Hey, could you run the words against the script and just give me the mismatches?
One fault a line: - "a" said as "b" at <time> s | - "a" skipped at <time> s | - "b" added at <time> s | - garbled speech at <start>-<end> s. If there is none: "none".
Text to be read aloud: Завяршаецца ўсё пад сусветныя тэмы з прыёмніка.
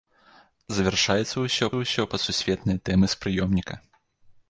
- "ўсё" added at 1.8 s